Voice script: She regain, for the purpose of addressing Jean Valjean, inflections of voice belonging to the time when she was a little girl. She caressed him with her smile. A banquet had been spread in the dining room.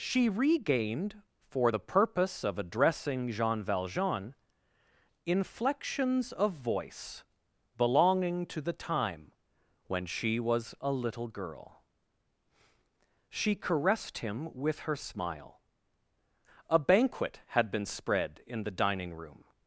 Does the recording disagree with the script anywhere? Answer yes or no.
yes